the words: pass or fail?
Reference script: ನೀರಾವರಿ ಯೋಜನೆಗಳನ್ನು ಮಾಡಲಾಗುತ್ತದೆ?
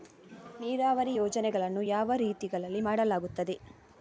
fail